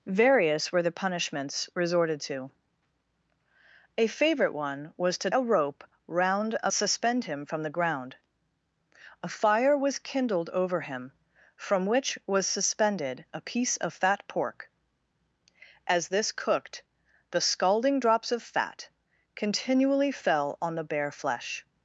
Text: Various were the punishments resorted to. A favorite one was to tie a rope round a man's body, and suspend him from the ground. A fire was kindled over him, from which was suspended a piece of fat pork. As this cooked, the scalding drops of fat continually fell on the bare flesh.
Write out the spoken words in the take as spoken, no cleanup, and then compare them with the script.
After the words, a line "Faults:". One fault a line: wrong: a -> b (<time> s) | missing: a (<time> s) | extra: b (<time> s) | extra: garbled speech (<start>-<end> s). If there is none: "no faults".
Various were the punishments resorted to. A favorite one was to a rope round a suspend him from the ground. A fire was kindled over him, from which was suspended a piece of fat pork. As this cooked, the scalding drops of fat continually fell on the bare flesh.
Faults:
missing: tie (5.3 s)
missing: man's body and (6.7 s)